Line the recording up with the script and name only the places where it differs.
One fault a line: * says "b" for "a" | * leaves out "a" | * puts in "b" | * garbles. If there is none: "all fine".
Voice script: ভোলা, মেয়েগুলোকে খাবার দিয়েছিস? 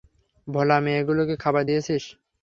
all fine